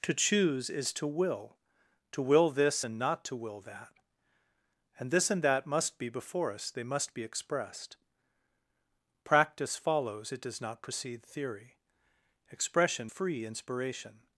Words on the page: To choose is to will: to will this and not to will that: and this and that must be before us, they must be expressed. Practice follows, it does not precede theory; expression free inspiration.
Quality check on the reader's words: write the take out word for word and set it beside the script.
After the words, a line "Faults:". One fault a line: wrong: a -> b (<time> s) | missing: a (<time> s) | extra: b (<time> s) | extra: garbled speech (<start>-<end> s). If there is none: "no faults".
To choose is to will: to will this and not to will that: and this and that must be before us, they must be expressed. Practice follows, it does not precede theory; expression free inspiration.
Faults:
no faults